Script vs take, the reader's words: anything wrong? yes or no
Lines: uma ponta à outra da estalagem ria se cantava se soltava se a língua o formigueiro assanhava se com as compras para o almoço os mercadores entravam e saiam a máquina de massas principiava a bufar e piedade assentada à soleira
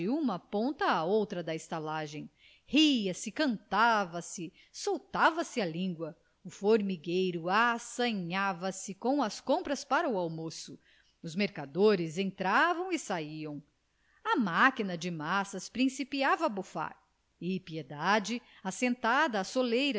no